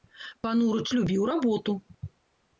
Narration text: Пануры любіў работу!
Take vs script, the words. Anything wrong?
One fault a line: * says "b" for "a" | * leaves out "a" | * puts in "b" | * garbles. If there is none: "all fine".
all fine